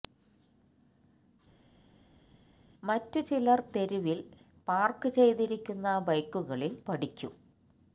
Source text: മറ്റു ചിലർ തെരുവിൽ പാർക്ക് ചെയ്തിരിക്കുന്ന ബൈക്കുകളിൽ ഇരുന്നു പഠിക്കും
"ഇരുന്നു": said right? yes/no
no